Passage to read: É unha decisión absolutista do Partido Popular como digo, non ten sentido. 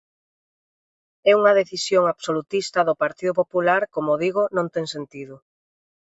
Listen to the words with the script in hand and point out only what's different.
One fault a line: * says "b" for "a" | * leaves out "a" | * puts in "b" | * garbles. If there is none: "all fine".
all fine